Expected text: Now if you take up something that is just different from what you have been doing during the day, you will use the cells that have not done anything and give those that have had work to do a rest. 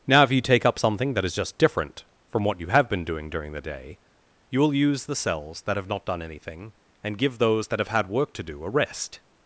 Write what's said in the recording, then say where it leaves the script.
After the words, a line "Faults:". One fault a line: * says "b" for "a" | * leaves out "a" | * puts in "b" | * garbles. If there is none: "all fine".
Now if you take up something that is just different from what you have been doing during the day, you will use the cells that have not done anything and give those that have had work to do a rest.
Faults:
all fine